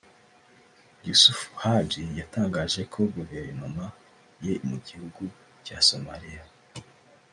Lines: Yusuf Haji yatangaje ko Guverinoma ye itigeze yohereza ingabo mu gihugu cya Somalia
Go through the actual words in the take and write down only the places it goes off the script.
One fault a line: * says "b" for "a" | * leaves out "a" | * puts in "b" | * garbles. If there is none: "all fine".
* leaves out "itigeze yohereza ingabo"